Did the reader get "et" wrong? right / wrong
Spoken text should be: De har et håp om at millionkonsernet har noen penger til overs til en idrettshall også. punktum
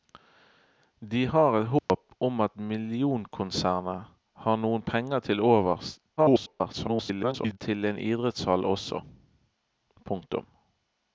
right